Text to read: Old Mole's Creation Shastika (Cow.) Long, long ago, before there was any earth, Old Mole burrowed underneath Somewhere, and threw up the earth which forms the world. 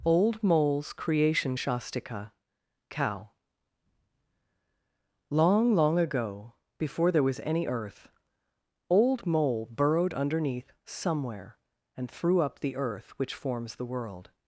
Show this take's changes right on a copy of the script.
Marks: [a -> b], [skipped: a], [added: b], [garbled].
Old Mole's Creation Shastika (Cow.) Long, long ago, before there was any earth, Old Mole burrowed underneath Somewhere, and threw up the earth which forms the world.